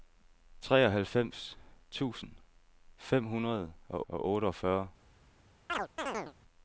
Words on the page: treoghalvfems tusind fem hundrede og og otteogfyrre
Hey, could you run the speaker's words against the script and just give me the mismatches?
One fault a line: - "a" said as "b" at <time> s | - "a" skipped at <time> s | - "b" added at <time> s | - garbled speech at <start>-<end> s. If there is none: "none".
none